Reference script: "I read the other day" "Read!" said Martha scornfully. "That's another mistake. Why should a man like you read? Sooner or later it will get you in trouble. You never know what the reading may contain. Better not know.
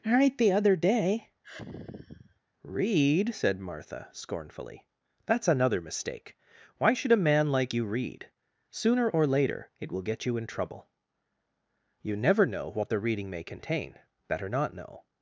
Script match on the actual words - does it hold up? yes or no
no